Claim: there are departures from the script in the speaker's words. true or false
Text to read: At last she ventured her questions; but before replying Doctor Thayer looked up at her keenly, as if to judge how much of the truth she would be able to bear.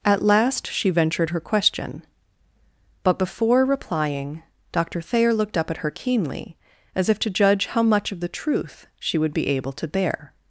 true